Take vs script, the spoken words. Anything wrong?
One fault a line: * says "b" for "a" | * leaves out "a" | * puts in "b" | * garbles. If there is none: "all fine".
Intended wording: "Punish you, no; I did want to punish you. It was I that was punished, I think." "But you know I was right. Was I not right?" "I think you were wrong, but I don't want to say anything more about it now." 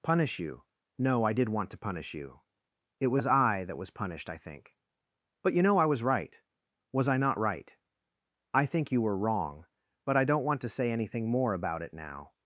all fine